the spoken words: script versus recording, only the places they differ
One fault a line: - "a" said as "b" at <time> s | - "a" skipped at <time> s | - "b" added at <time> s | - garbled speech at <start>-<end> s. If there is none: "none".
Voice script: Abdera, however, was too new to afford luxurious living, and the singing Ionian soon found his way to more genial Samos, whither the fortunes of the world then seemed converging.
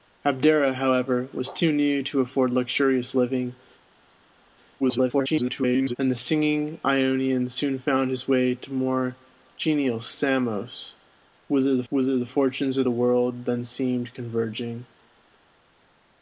- garbled speech at 4.8-6.0 s
- "whither the" added at 11.9 s